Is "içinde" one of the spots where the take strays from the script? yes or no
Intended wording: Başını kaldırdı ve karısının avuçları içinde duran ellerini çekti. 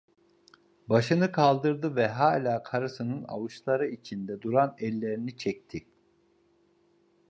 no